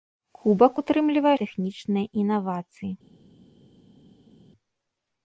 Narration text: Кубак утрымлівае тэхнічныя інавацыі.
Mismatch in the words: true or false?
false